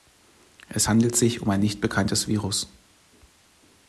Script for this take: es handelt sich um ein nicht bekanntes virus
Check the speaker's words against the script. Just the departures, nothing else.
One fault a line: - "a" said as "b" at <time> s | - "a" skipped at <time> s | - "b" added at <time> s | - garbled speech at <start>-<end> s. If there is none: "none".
none